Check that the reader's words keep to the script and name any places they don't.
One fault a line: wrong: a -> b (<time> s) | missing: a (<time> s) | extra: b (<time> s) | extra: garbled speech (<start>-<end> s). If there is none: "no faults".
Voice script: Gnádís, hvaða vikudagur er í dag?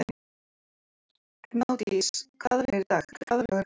missing: vikudagur (2.7 s)
extra: garbled speech (3.1-3.6 s)